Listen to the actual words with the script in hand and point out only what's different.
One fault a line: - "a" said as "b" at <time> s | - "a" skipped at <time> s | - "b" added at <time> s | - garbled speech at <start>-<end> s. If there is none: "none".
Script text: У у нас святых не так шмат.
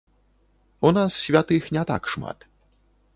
- "у" skipped at 0.9 s